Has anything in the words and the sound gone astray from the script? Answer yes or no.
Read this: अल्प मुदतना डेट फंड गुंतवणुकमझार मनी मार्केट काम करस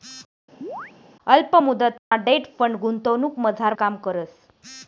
yes